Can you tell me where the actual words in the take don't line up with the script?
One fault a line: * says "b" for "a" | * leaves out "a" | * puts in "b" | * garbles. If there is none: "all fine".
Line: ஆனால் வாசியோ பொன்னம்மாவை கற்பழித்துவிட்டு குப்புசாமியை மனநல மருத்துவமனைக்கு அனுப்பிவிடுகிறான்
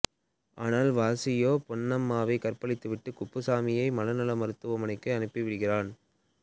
all fine